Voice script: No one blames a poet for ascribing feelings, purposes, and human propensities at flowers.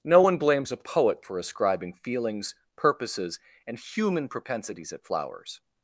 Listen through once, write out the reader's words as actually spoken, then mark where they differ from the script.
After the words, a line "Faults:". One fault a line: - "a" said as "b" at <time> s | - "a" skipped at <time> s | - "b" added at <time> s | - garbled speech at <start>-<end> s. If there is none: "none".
No one blames a poet for ascribing feelings, purposes, and human propensities at flowers.
Faults:
none